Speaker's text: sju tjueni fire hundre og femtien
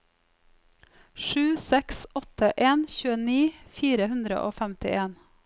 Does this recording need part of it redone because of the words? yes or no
yes